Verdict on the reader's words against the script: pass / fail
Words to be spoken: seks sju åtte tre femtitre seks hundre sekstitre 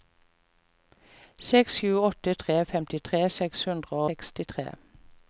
pass